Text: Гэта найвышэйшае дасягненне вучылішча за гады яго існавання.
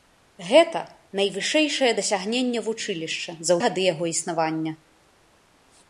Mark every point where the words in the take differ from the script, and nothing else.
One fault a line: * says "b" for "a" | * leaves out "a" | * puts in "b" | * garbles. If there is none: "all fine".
all fine